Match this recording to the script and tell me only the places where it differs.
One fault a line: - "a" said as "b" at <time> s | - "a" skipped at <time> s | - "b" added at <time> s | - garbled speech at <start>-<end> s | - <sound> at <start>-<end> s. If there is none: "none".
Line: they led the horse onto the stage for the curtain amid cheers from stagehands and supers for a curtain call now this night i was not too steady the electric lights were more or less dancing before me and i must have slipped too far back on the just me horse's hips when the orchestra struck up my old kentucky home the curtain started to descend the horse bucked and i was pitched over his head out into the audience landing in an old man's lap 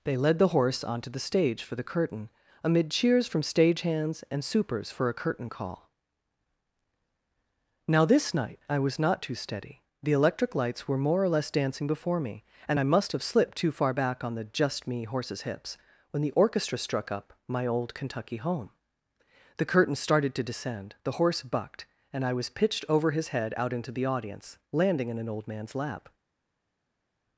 none